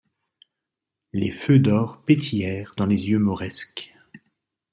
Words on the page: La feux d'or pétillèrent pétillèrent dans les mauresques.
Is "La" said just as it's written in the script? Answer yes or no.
no